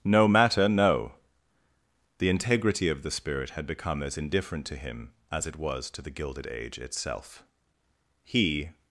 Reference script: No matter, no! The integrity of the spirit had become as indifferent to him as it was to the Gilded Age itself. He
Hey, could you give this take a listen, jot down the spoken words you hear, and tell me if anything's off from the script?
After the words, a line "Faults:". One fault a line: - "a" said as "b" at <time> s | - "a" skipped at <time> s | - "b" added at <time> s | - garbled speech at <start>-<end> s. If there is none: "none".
No matter, no! The integrity of the spirit had become as indifferent to him as it was to the Gilded Age itself. He
Faults:
none